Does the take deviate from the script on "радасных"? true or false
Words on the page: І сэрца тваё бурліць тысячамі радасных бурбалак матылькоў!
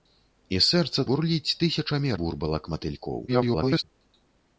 true